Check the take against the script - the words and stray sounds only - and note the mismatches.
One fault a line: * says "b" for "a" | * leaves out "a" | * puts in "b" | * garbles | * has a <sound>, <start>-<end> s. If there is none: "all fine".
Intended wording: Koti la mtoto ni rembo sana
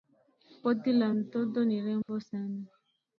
* has a dropout, 2.0-2.1 s